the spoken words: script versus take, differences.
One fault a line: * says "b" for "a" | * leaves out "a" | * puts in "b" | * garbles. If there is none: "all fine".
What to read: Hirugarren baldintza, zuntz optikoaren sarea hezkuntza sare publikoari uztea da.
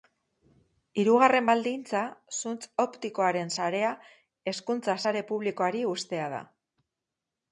all fine